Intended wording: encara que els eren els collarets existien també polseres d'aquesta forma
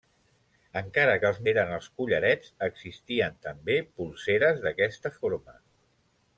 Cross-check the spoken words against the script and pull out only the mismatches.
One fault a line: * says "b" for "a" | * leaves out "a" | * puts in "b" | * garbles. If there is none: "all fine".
all fine